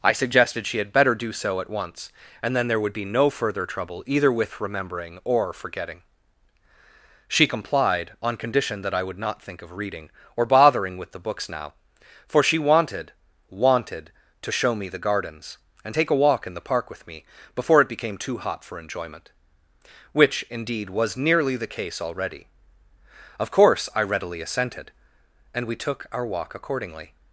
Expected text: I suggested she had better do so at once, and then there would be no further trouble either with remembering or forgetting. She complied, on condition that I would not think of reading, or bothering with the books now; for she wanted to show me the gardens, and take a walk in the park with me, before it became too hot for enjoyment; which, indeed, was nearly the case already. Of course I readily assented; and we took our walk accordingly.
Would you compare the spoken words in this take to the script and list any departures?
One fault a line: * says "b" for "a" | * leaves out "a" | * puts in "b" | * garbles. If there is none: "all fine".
* puts in "wanted"